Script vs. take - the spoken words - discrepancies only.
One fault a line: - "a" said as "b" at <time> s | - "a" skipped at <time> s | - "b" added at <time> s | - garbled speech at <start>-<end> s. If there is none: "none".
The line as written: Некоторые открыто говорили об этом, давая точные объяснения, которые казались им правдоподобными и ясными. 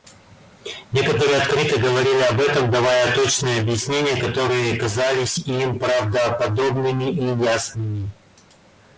none